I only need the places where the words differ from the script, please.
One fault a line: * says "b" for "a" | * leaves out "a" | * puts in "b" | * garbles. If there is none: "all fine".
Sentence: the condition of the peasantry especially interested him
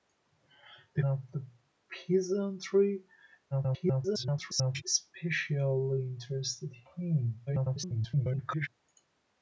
* leaves out "condition"
* garbles
* garbles